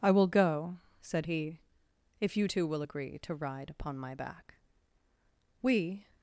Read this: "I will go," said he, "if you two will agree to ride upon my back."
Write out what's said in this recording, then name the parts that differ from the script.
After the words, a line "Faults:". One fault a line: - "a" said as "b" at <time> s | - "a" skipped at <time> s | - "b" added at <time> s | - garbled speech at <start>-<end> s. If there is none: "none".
"I will go," said he, "if you two will agree to ride upon my back." "We
Faults:
- "We" added at 5.6 s